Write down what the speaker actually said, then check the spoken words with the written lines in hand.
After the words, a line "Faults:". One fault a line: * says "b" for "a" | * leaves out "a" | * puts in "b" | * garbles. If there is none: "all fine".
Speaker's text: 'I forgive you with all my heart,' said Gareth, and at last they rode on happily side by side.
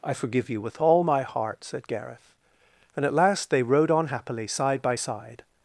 'I forgive you with all my heart,' said Gareth, and at last they rode on happily side by side.
Faults:
all fine